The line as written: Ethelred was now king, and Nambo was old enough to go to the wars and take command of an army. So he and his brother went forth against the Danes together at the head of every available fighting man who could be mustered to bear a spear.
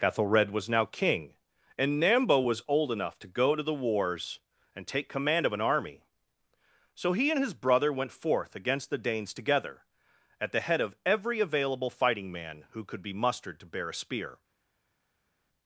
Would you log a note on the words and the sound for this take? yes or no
no